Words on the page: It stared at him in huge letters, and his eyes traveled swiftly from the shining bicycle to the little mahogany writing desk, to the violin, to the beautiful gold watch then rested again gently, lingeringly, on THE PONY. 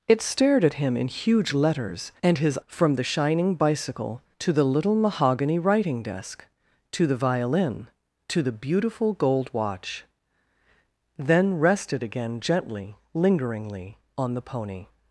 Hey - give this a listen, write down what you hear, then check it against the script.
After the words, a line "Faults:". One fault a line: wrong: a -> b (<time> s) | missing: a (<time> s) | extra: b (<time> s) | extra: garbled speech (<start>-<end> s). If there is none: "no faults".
It stared at him in huge letters, and his from the shining bicycle to the little mahogany writing desk, to the violin, to the beautiful gold watch then rested again gently, lingeringly, on THE PONY.
Faults:
missing: eyes traveled swiftly (2.6 s)